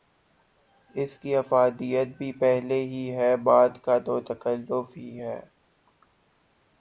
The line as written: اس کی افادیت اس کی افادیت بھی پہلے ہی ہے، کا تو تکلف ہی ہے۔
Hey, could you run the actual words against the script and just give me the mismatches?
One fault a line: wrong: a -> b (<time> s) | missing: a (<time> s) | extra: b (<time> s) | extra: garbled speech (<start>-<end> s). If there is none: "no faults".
missing: اس کی افادیت (2.1 s)
extra: بعد (3.4 s)